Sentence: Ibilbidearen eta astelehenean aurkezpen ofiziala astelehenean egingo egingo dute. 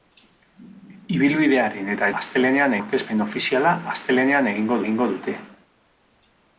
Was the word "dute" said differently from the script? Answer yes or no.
no